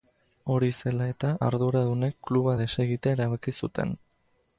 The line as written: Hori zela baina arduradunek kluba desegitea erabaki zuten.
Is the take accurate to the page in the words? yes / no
no